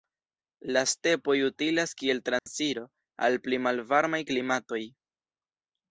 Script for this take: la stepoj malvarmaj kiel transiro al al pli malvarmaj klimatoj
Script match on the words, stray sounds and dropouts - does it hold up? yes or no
no